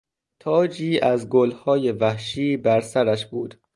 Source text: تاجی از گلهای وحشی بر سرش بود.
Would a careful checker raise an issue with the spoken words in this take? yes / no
no